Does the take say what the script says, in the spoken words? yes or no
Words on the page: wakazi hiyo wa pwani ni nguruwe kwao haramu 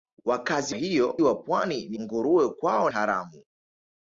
yes